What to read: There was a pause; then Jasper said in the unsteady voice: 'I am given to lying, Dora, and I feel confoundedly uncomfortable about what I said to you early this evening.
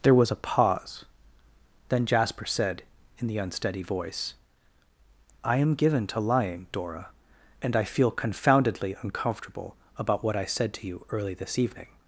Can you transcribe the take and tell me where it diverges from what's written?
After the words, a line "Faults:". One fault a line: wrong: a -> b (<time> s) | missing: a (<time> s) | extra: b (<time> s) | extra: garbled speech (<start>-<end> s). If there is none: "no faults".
There was a pause; then Jasper said in the unsteady voice: 'I am given to lying, Dora, and I feel confoundedly uncomfortable about what I said to you early this evening.
Faults:
no faults